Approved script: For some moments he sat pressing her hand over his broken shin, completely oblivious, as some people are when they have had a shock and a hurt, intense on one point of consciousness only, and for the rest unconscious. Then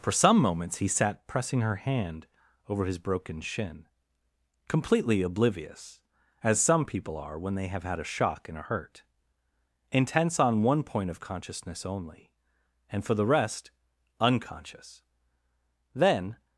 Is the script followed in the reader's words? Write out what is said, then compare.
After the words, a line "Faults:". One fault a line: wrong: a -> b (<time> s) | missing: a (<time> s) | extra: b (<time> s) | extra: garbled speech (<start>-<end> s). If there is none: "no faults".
For some moments he sat pressing her hand over his broken shin, completely oblivious, as some people are when they have had a shock and a hurt, intense on one point of consciousness only, and for the rest unconscious. Then
Faults:
no faults